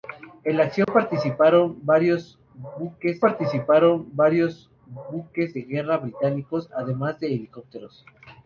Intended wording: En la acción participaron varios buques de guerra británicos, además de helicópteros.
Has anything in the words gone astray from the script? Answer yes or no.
yes